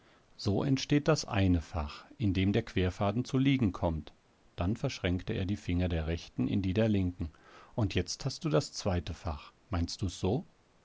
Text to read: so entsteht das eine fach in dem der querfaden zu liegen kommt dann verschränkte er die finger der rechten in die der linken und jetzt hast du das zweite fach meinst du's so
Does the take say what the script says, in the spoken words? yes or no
yes